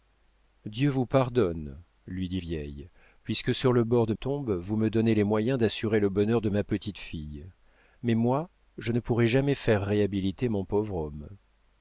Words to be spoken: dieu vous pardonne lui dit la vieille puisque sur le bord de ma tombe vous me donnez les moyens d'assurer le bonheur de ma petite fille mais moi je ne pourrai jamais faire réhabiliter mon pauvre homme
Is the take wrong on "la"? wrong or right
wrong